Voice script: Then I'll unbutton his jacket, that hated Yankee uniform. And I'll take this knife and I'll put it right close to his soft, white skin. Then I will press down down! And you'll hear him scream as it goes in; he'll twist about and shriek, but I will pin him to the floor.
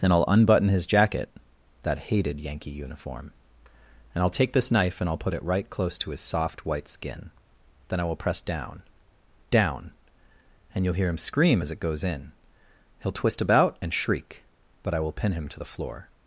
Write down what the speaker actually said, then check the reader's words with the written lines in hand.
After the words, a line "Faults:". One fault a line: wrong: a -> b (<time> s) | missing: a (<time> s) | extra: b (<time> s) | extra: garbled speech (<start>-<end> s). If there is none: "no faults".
Then I'll unbutton his jacket, that hated Yankee uniform. And I'll take this knife and I'll put it right close to his soft, white skin. Then I will press down down! And you'll hear him scream as it goes in; he'll twist about and shriek, but I will pin him to the floor.
Faults:
no faults